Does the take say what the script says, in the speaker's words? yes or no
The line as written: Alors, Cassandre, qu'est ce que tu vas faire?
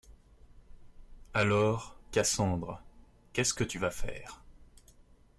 yes